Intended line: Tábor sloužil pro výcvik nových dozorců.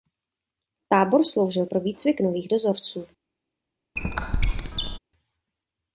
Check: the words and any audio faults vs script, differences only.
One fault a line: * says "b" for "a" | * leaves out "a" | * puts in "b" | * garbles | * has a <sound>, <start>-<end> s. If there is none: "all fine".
* has a squeak, 4.0-5.0 s